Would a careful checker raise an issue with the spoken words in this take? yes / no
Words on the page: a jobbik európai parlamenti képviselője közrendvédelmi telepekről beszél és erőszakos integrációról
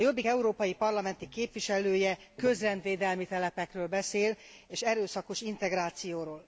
no